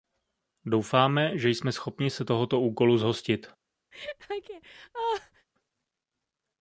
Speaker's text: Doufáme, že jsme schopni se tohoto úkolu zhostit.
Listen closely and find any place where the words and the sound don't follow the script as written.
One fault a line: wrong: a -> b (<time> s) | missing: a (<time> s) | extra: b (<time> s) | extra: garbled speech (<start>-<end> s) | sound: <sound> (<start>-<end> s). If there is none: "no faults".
sound: laugh (3.9-5.5 s)